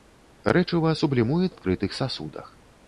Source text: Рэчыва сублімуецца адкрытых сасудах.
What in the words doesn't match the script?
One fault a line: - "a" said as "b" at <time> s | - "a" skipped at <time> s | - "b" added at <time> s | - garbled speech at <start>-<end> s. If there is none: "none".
none